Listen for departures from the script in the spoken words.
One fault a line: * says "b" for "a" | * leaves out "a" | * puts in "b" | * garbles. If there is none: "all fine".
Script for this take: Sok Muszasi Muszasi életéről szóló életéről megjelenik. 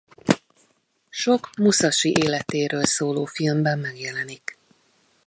* leaves out "Muszasi"
* says "filmben" for "életéről"